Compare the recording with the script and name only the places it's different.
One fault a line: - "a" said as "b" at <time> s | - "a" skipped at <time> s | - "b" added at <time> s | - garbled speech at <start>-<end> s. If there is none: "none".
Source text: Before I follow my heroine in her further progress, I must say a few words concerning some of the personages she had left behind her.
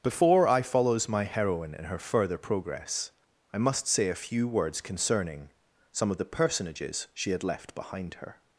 - "follow" said as "follows" at 0.6 s